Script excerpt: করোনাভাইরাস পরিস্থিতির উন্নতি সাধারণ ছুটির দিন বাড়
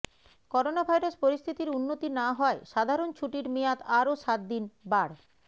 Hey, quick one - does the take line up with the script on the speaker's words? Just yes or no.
no